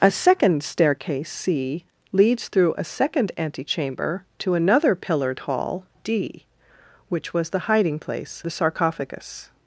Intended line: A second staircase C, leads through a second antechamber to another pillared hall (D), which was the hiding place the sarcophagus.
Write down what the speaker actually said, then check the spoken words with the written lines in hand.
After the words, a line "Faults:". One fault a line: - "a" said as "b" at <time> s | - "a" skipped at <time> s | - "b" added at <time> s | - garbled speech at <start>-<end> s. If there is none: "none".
A second staircase C, leads through a second antechamber to another pillared hall (D), which was the hiding place the sarcophagus.
Faults:
none